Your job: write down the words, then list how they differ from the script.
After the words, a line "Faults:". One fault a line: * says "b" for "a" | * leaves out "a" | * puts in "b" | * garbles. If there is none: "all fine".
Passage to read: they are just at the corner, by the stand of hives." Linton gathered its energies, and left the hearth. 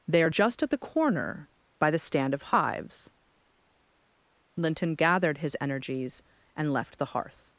they are just at the corner, by the stand of hives." Linton gathered his energies, and left the hearth.
Faults:
* says "his" for "its"